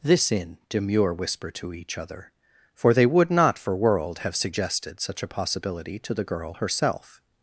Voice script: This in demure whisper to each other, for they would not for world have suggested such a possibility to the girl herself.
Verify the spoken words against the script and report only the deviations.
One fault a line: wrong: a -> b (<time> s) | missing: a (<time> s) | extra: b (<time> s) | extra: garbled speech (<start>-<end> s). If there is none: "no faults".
no faults